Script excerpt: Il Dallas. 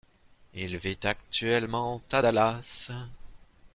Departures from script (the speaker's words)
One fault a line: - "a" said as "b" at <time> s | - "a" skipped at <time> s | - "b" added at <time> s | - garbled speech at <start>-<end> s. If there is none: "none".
- "vit actuellement à" added at 0.8 s